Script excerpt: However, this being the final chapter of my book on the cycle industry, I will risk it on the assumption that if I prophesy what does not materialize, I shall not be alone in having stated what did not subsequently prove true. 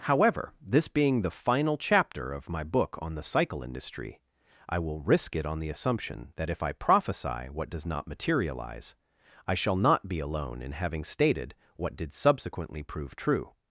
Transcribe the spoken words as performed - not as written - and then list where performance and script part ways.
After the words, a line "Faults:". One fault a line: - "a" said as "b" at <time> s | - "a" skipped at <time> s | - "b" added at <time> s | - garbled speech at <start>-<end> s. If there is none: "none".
However, this being the final chapter of my book on the cycle industry, I will risk it on the assumption that if I prophesy what does not materialize, I shall not be alone in having stated what did subsequently prove true.
Faults:
- "not" skipped at 12.1 s